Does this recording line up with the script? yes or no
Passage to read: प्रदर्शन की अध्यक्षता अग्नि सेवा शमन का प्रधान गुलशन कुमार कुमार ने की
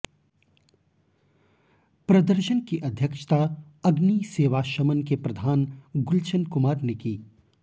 no